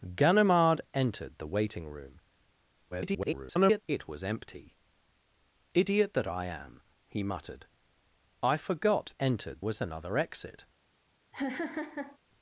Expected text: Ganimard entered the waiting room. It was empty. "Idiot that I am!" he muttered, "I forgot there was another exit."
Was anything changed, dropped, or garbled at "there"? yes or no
yes